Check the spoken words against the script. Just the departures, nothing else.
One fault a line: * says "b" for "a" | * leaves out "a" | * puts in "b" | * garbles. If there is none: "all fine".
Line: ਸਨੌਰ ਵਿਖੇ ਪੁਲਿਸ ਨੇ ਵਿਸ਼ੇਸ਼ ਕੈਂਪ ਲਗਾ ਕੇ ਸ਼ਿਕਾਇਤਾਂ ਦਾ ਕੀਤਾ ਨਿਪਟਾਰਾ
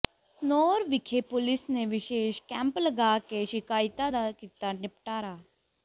all fine